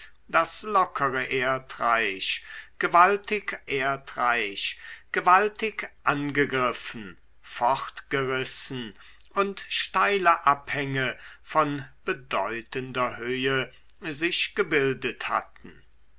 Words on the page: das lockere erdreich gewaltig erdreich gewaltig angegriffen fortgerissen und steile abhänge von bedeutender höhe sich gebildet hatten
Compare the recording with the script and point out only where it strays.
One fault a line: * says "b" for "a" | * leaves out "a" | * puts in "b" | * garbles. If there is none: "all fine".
all fine